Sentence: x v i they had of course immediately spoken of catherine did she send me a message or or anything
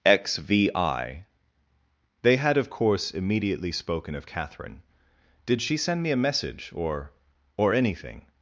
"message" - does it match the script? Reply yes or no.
yes